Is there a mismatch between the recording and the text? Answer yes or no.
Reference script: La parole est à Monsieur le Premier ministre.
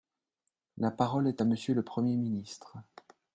no